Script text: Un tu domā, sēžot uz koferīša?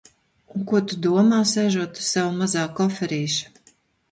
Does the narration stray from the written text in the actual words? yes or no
yes